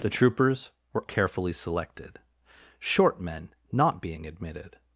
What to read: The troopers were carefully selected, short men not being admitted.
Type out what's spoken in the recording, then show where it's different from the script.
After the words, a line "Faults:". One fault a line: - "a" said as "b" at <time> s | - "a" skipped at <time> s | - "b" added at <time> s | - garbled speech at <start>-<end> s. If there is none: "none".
The troopers were carefully selected, short men not being admitted.
Faults:
none